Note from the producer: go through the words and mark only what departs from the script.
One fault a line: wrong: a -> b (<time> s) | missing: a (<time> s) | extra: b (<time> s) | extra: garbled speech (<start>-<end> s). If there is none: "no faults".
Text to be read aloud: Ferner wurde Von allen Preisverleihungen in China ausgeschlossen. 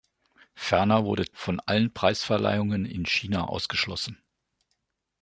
no faults